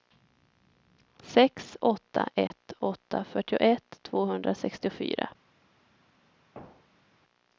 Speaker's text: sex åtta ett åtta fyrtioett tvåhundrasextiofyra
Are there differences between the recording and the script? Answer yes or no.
no